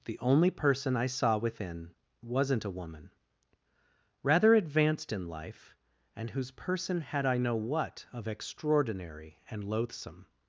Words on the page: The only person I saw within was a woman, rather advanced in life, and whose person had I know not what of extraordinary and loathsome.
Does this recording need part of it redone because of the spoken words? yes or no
yes